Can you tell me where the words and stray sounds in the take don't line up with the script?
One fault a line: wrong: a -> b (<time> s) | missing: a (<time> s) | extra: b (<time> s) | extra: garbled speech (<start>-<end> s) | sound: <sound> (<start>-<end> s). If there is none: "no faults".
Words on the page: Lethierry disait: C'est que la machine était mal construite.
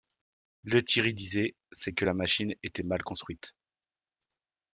no faults